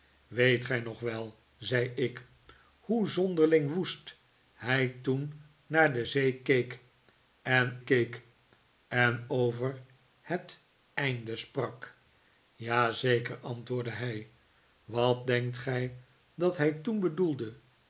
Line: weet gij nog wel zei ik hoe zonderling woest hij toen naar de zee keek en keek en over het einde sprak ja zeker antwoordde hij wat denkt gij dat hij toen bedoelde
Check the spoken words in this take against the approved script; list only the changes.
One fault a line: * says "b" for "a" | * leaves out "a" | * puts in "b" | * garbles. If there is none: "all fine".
all fine